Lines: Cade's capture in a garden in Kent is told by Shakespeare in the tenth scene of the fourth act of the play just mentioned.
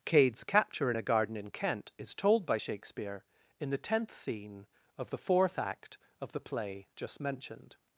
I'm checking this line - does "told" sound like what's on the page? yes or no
yes